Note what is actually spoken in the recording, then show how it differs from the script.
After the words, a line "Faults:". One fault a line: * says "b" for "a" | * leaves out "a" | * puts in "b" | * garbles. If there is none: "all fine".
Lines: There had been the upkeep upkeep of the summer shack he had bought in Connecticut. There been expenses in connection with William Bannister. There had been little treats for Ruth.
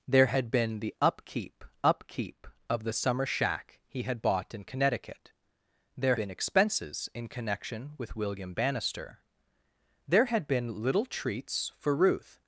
There had been the upkeep upkeep of the summer shack he had bought in Connecticut. There been expenses in connection with William Bannister. There had been little treats for Ruth.
Faults:
all fine